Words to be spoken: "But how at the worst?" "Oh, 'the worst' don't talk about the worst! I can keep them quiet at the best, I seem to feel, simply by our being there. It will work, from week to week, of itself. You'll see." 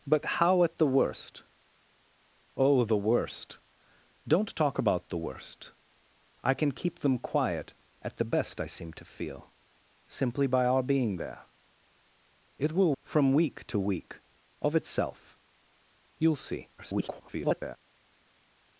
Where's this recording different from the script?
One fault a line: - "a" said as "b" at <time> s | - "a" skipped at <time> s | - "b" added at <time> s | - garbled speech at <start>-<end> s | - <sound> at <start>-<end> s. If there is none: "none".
- "work" skipped at 12.9 s
- garbled speech at 16.8-17.8 s